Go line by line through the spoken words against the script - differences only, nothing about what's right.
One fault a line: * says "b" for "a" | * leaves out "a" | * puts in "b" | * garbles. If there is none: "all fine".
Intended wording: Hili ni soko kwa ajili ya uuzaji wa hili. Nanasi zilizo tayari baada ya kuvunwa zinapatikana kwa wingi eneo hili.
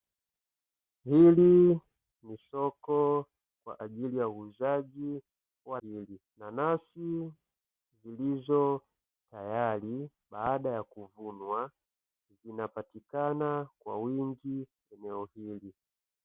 all fine